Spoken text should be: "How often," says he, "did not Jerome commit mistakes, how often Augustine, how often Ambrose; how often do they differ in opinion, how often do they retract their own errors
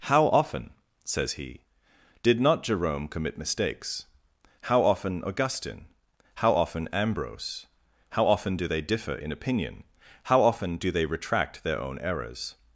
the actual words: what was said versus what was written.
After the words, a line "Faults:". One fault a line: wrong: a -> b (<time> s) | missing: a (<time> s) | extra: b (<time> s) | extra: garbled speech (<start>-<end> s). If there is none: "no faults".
"How often," says he, "did not Jerome commit mistakes, how often Augustine, how often Ambrose; how often do they differ in opinion, how often do they retract their own errors
Faults:
no faults